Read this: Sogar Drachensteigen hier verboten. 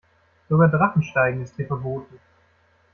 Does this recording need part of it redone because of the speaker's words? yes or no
yes